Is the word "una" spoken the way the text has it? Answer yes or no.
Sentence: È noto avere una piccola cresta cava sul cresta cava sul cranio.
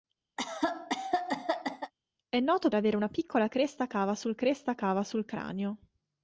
yes